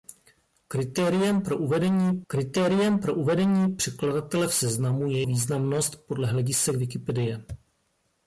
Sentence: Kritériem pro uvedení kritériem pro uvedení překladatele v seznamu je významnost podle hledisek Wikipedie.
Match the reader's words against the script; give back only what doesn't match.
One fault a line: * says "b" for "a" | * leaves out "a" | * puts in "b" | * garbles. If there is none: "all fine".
all fine